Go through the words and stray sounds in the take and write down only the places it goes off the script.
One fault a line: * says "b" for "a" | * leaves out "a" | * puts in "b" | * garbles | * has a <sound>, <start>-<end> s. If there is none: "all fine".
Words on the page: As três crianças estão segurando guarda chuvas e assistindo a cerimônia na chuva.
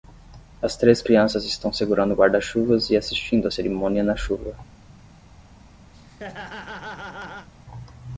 * has a laugh, 5.9-7.5 s